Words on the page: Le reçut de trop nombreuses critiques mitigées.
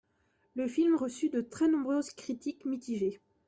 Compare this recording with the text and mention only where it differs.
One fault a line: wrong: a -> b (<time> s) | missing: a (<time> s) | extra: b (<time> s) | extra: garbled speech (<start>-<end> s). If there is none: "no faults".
extra: film (0.7 s)
wrong: trop -> très (1.4 s)